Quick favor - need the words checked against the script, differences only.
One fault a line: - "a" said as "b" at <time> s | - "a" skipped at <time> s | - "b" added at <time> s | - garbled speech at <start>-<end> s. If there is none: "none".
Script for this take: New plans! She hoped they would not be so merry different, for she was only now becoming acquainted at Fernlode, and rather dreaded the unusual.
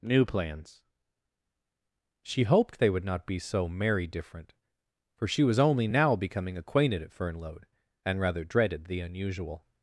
none